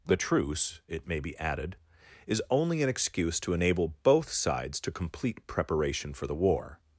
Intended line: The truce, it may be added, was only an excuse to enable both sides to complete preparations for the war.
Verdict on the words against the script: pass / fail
fail